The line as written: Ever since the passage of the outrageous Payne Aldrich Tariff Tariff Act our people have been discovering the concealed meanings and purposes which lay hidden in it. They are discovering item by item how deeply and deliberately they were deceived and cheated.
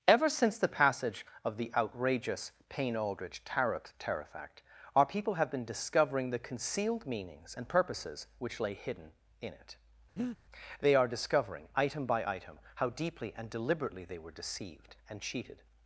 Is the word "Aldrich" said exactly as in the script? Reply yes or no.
yes